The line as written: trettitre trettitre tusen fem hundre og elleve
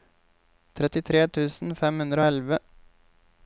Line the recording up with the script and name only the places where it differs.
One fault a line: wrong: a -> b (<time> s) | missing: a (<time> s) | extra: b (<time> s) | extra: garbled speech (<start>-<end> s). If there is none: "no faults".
missing: trettitre (1.2 s)